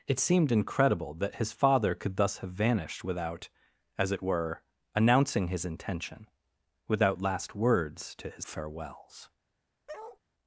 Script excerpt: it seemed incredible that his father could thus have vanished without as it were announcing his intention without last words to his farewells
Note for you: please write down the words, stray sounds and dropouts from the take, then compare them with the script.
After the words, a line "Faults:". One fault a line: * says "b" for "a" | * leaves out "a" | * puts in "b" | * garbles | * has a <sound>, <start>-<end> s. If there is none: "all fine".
it seemed incredible that his father could thus have vanished without as it were announcing his intention without last words to his farewells
Faults:
* has a bark, 9.9-10.2 s